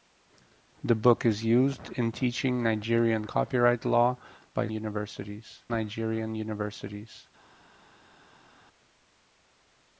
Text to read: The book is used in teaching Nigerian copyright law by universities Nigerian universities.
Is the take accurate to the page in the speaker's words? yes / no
yes